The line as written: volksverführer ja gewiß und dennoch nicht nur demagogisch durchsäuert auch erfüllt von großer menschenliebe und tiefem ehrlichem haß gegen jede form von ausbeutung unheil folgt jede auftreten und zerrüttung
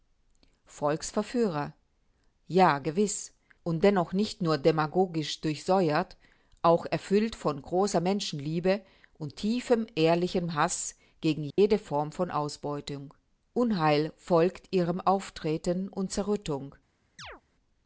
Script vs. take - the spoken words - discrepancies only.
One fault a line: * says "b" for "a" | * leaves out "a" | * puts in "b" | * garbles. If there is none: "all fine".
* says "ihrem" for "jede"